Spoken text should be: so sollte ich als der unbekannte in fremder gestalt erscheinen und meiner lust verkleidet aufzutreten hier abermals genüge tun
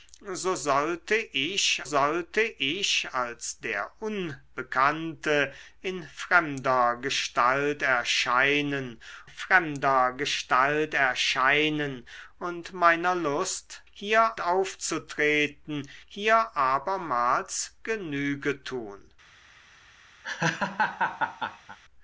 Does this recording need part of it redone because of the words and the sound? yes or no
yes